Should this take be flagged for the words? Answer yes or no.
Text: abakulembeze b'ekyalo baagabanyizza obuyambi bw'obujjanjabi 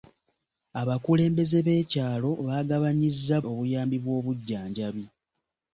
no